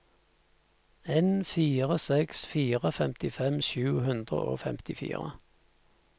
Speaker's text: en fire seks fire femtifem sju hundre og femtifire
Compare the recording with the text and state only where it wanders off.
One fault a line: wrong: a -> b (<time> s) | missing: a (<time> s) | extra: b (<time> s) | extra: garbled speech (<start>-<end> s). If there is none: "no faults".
no faults